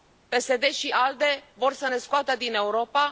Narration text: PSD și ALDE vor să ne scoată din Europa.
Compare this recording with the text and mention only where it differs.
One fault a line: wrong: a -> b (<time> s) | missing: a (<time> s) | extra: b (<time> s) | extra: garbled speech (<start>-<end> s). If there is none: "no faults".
no faults